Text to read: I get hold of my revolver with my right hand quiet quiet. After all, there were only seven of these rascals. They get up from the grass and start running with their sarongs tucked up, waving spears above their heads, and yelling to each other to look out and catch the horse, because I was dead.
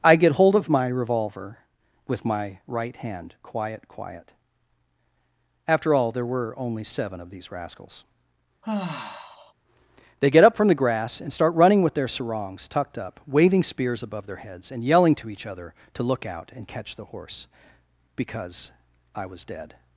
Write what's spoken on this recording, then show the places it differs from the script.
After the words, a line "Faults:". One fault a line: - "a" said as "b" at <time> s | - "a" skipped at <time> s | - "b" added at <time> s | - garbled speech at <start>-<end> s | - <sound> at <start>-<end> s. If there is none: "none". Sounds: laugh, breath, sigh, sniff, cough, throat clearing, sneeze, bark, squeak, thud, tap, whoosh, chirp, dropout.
I get hold of my revolver with my right hand quiet quiet. After all, there were only seven of these rascals. They get up from the grass and start running with their sarongs tucked up, waving spears above their heads, and yelling to each other to look out and catch the horse, because I was dead.
Faults:
- sigh at 8.6-9.5 s